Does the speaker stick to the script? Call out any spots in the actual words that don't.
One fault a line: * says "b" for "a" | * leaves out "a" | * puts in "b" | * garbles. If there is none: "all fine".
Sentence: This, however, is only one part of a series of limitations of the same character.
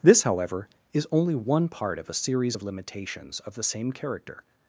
all fine